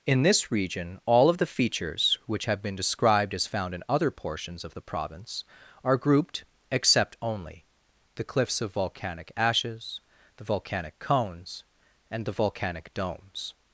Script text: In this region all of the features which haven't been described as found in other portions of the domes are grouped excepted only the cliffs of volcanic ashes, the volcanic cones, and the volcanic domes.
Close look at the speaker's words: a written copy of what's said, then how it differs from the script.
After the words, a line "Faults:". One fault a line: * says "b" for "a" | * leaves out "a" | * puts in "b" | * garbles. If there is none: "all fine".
In this region all of the features which have been described as found in other portions of the province are grouped except only the cliffs of volcanic ashes, the volcanic cones, and the volcanic domes.
Faults:
* says "have" for "haven't"
* says "province" for "domes"
* says "except" for "excepted"